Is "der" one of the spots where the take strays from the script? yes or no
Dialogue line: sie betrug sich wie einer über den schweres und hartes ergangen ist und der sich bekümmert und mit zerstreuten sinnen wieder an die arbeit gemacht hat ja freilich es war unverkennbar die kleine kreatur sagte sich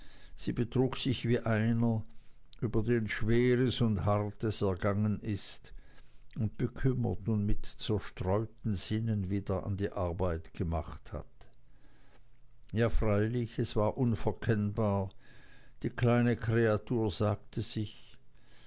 yes